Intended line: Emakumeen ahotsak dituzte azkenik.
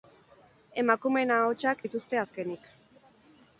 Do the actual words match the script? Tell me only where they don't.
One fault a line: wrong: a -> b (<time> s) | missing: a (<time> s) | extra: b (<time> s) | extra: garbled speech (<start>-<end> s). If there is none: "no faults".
no faults